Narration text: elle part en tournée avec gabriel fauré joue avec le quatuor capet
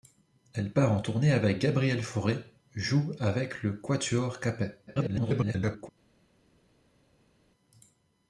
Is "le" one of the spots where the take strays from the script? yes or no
no